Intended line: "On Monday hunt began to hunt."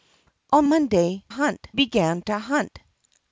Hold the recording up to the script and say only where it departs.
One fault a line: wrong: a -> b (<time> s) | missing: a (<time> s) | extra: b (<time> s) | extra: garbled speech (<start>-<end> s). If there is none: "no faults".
no faults